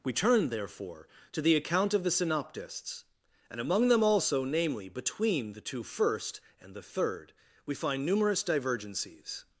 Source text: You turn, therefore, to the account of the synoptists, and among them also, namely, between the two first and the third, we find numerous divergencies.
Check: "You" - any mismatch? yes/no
yes